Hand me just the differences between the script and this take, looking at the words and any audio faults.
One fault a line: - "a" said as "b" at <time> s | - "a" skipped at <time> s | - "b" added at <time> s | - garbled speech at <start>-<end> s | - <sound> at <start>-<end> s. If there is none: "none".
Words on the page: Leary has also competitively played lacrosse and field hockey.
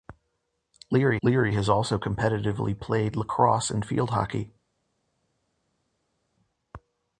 - "leary" added at 1.2 s